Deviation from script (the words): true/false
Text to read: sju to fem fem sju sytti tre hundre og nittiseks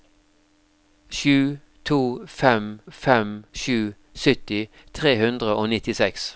false